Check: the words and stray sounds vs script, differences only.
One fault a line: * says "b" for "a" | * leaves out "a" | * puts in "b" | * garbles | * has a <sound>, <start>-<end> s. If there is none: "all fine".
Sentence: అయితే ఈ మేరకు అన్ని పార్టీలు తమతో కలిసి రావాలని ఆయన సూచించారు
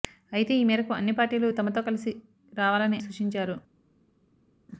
* leaves out "ఆయన"